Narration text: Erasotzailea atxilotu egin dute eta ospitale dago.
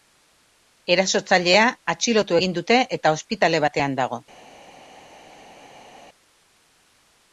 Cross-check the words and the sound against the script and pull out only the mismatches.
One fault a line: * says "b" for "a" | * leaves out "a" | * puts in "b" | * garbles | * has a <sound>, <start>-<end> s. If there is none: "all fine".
* puts in "batean"